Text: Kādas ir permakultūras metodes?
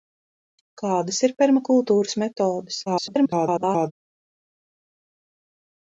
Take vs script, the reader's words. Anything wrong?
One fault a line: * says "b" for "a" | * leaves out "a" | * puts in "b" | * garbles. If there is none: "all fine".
* garbles